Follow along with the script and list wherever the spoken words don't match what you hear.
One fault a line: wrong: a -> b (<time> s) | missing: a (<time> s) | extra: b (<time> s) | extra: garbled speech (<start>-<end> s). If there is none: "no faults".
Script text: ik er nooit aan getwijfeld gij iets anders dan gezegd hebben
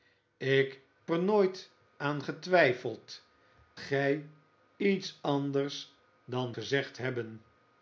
no faults